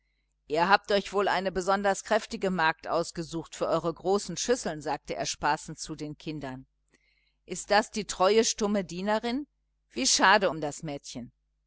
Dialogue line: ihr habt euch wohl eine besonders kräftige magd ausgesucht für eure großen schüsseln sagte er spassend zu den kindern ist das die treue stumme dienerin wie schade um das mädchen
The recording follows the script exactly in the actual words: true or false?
true